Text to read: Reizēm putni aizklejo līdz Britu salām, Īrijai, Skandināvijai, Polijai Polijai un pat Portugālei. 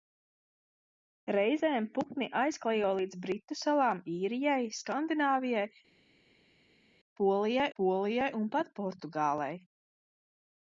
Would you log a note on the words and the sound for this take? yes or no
no